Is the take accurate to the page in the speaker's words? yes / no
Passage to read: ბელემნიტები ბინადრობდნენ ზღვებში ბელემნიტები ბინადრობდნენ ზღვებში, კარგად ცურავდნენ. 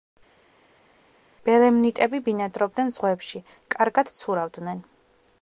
no